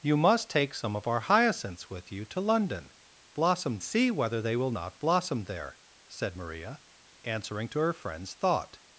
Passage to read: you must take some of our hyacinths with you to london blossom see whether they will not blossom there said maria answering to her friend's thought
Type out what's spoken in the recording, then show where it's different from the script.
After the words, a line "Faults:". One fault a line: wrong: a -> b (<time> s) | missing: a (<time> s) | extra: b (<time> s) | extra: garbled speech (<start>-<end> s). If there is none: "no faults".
you must take some of our hyacinths with you to london blossom see whether they will not blossom there said maria answering to her friend's thought
Faults:
no faults